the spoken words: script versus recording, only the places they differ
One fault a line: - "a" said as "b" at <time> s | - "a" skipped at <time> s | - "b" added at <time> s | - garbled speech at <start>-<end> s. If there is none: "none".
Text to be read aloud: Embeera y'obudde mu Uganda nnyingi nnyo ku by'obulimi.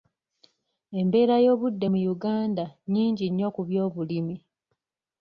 none